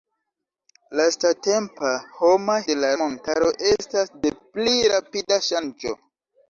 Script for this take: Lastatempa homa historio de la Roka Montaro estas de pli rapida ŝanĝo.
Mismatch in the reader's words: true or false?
true